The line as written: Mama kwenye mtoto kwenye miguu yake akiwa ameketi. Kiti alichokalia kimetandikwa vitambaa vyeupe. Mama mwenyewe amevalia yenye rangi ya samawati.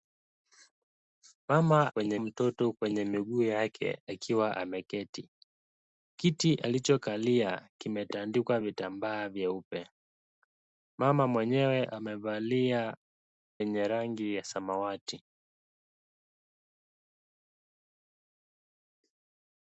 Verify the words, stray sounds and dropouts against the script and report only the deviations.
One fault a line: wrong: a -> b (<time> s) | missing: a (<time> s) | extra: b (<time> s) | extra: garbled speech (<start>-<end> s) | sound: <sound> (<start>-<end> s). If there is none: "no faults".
no faults